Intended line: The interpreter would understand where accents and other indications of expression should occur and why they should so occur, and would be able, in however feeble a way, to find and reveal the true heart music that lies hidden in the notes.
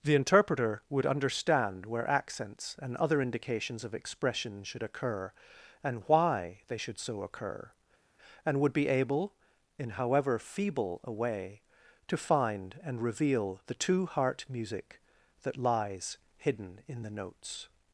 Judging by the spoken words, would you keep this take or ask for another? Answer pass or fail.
fail